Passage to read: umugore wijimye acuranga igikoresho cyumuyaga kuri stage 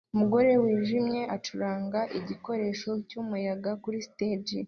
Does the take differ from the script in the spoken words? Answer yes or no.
no